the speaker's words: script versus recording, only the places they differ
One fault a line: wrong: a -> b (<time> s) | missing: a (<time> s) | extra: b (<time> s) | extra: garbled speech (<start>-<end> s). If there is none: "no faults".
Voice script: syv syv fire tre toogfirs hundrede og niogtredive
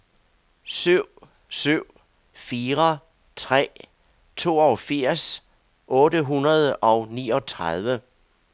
extra: otte (5.9 s)